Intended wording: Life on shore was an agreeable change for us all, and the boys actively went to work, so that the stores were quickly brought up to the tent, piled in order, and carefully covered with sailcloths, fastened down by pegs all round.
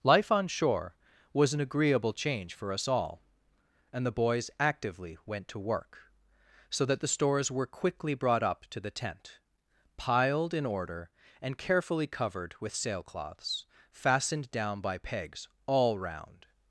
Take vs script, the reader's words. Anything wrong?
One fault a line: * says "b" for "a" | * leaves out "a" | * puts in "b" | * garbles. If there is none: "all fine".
all fine